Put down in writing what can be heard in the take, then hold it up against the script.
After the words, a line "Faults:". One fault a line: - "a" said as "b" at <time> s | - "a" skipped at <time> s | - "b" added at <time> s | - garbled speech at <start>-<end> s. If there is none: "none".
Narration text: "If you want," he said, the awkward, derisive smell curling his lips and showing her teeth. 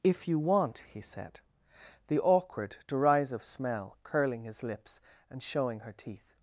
"If you want," he said, the awkward, derisive smell curling his lips and showing her teeth.
Faults:
none